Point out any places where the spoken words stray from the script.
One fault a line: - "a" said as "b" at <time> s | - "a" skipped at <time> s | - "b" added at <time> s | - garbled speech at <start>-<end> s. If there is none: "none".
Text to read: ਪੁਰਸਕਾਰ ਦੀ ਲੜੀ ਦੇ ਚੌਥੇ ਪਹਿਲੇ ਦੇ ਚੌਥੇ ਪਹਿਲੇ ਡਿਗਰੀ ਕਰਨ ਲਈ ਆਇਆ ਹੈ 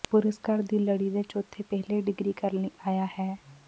- "ਦੇ ਚੌਥੇ ਪਹਿਲੇ" skipped at 2.0 s